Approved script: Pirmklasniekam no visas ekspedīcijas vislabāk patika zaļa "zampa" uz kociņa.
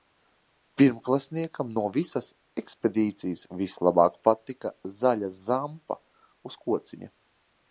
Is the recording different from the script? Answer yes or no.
no